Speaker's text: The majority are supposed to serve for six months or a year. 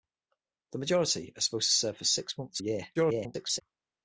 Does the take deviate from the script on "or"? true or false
true